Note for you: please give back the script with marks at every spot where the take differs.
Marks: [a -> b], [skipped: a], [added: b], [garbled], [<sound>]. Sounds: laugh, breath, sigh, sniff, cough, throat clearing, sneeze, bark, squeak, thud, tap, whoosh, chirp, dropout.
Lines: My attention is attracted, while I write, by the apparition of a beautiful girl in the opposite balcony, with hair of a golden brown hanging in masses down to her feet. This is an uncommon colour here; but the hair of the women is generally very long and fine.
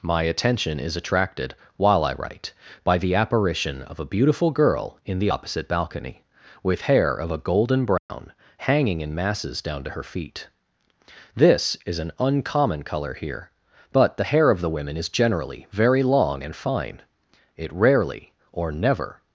My attention is attracted, while I write, by the apparition of a beautiful girl in the opposite balcony, with hair of a golden brown [dropout] hanging in masses down to her feet. This is an uncommon colour here; but the hair of the women is generally very long and fine. [added: It rarely or never]